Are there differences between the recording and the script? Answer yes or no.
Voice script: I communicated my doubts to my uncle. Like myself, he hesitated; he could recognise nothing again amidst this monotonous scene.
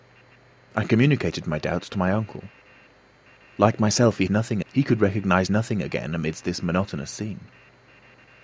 yes